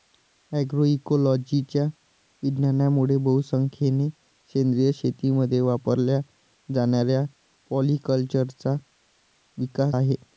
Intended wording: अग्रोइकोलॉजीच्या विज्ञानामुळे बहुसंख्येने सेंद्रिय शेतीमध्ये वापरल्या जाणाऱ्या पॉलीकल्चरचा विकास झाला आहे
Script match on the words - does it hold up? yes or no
no